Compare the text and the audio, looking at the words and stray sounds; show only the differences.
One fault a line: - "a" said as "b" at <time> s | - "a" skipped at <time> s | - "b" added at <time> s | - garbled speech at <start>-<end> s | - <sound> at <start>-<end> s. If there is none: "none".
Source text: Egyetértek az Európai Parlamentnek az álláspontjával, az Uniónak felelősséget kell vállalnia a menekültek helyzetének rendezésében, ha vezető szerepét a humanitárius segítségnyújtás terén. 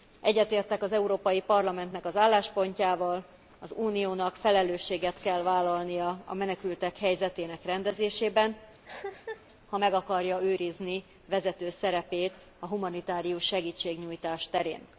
- cough at 8.8-9.5 s
- "meg akarja őrizni" added at 9.8 s